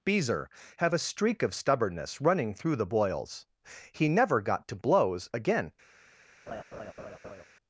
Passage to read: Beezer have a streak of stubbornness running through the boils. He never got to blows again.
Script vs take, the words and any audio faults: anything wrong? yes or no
yes